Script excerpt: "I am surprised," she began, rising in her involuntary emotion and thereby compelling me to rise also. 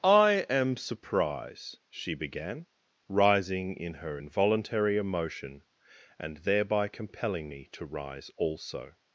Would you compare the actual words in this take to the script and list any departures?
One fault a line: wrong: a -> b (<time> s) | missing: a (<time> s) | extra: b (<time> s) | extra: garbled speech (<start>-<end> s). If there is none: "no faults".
wrong: surprised -> surprise (0.8 s)